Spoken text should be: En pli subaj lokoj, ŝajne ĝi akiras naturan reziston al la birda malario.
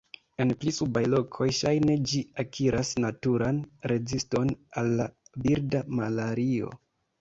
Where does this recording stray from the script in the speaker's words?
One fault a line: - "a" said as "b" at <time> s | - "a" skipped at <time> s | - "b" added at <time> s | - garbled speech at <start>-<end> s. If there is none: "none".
none